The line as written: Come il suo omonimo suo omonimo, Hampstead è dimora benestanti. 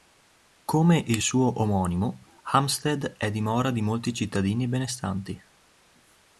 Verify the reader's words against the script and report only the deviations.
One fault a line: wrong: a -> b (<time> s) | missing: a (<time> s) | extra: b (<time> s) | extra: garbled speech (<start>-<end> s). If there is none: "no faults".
missing: suo omonimo (2.4 s)
extra: di molti cittadini (3.7 s)